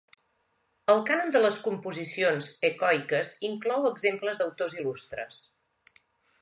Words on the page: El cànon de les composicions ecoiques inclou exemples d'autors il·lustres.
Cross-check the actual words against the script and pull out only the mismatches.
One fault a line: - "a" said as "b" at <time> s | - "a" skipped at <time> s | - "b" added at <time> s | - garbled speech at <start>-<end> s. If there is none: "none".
none